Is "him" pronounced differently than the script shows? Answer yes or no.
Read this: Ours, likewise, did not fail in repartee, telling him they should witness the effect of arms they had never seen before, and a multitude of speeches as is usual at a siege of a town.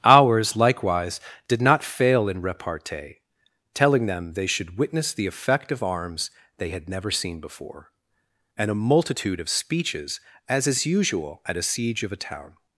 yes